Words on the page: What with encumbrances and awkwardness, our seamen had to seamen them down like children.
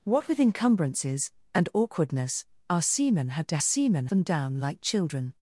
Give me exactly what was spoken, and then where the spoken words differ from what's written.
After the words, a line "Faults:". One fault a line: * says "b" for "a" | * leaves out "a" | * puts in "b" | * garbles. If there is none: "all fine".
What with encumbrances and awkwardness, our seamen had to seamen them down like children.
Faults:
all fine